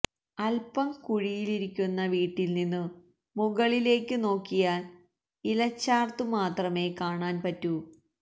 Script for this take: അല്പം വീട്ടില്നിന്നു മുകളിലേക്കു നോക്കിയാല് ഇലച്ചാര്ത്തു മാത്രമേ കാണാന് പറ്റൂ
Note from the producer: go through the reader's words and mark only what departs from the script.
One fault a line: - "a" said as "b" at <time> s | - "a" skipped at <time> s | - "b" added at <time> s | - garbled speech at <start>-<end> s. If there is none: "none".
- "കുഴിയിലിരിക്കുന്ന" added at 1.0 s